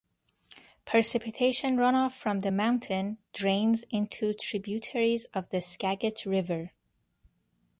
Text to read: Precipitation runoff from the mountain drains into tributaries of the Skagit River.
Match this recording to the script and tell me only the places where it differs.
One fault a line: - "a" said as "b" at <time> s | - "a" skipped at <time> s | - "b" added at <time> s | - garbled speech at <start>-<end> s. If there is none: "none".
none